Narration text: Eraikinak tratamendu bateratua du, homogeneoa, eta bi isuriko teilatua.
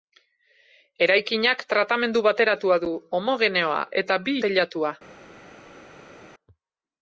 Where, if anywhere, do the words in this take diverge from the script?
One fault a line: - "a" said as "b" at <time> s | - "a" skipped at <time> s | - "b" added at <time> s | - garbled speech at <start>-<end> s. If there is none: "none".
- "isuriko" skipped at 4.4 s